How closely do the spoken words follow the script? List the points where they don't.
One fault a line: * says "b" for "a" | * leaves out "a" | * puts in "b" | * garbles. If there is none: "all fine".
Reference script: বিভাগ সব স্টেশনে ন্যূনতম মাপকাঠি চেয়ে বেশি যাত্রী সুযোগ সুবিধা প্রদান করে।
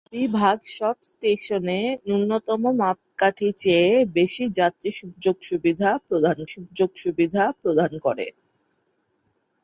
* puts in "সুযোগ সুবিধা প্রদান"